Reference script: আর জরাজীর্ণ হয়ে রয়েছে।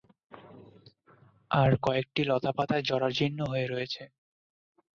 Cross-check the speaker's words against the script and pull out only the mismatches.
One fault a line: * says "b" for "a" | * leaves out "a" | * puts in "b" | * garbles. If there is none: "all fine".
* puts in "কয়েকটি লতাপাতায়"